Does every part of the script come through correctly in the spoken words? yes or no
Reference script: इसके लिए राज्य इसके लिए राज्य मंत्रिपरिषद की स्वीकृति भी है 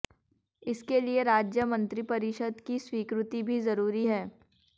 no